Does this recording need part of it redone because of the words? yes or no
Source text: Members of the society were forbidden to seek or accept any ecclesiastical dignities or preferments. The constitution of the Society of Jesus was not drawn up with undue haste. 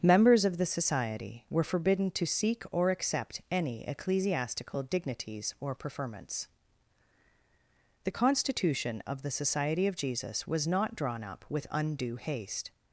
no